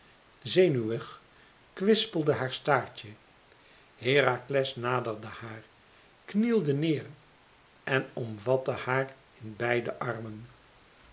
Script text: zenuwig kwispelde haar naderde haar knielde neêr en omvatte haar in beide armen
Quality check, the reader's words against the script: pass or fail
fail